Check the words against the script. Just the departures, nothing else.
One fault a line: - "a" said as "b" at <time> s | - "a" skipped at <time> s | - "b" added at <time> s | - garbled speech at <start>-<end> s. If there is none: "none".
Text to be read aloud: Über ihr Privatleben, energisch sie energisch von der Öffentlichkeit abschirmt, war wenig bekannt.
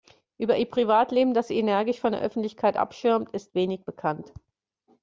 - "energisch" said as "das" at 1.4 s
- "war" said as "ist" at 3.3 s